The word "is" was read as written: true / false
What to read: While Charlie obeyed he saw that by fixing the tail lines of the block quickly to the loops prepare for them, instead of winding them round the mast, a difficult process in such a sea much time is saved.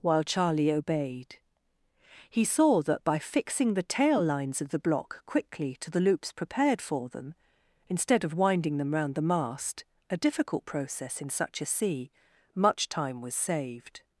false